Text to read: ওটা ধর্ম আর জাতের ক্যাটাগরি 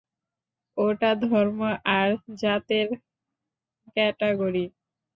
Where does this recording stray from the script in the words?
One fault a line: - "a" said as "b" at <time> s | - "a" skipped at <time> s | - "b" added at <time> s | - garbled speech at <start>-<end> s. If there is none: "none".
none